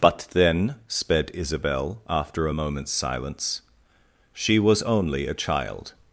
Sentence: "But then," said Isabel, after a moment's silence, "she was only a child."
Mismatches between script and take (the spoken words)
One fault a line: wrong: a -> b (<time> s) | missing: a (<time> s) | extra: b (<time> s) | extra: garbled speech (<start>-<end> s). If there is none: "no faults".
wrong: said -> sped (0.9 s)